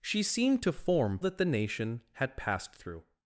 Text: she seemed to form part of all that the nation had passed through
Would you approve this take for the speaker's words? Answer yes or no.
no